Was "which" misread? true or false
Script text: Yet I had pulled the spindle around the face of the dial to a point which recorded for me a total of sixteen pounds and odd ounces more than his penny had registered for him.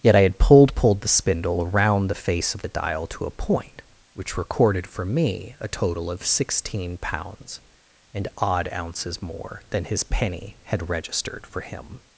false